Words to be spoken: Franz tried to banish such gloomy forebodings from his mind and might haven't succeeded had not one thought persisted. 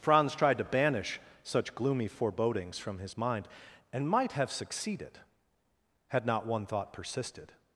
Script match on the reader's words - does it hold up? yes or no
no